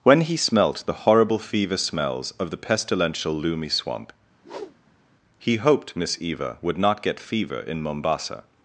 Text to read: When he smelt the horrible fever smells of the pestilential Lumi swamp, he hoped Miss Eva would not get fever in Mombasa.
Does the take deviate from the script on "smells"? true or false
false